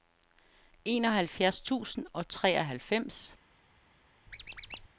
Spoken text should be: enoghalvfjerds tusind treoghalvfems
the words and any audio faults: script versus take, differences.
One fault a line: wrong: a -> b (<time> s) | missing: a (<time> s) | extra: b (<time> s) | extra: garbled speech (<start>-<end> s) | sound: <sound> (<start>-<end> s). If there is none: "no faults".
extra: og (2.1 s)
sound: squeak (4.3-4.9 s)